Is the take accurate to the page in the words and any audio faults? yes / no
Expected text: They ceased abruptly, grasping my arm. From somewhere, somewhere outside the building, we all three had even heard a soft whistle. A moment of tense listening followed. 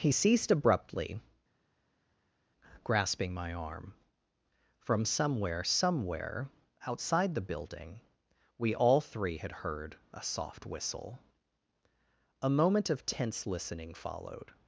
no